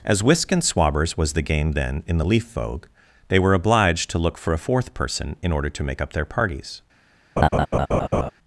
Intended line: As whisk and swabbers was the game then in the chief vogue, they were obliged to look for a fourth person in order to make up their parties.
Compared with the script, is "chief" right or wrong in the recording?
wrong